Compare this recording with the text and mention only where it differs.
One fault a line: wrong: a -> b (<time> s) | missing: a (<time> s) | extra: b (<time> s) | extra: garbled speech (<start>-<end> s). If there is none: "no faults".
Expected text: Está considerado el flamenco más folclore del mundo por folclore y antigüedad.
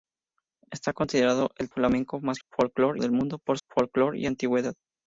no faults